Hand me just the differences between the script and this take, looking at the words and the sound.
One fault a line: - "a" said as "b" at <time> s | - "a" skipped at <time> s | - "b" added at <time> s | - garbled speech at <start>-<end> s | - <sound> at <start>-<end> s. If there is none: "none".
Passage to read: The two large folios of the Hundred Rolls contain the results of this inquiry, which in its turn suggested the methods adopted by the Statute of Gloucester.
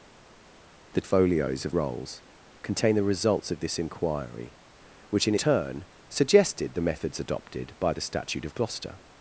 - "two large" skipped at 1.0 s
- "the Hundred" skipped at 1.7 s
- "its" skipped at 5.3 s